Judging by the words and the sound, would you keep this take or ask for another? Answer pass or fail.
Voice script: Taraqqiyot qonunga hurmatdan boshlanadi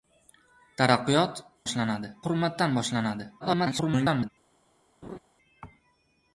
fail